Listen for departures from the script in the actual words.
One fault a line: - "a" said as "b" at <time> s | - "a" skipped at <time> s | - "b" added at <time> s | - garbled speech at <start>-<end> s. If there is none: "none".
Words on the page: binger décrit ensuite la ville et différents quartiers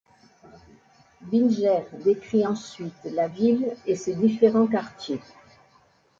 - "ses" added at 3.9 s